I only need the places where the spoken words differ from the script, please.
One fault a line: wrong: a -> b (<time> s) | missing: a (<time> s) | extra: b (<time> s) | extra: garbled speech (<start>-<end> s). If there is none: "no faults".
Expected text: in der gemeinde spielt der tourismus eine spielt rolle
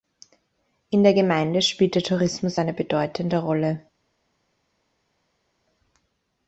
wrong: spielt -> bedeutende (2.7 s)